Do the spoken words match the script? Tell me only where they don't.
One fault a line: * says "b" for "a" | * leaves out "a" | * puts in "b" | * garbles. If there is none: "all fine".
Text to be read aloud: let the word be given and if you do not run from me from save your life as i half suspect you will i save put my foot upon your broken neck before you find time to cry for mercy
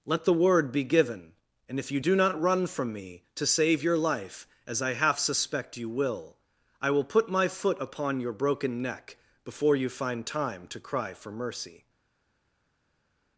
* says "to" for "from"
* says "will" for "save"